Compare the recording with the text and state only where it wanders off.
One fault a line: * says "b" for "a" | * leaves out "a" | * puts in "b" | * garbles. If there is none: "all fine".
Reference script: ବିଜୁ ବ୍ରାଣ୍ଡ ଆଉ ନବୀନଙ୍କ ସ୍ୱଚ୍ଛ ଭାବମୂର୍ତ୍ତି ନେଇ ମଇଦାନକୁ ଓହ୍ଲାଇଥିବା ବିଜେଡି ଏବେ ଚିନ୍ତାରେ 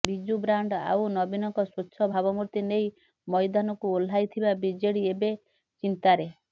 all fine